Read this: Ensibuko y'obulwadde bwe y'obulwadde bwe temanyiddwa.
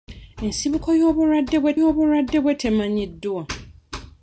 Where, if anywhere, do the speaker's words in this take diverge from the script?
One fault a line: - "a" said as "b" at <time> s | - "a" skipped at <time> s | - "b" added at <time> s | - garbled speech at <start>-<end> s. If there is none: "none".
none